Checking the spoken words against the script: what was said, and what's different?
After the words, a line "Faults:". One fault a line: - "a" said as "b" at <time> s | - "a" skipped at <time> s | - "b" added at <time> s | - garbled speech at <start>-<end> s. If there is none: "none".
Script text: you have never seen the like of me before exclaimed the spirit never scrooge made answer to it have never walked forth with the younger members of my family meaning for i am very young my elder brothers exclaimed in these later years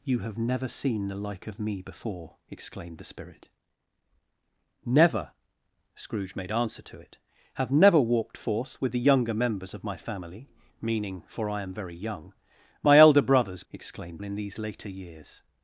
you have never seen the like of me before exclaimed the spirit never scrooge made answer to it have never walked forth with the younger members of my family meaning for i am very young my elder brothers exclaimed in these later years
Faults:
none